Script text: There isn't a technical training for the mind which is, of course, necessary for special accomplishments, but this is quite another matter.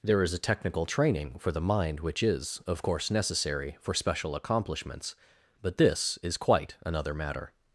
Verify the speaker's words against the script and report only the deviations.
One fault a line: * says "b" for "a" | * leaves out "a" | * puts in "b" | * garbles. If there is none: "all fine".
* says "is" for "isn't"